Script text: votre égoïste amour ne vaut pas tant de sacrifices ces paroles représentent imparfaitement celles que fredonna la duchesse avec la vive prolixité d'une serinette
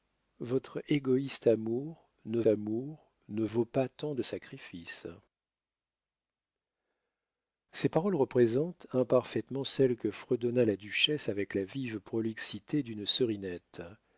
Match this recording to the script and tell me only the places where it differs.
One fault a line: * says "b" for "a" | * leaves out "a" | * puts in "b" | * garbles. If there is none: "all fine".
* puts in "amour ne"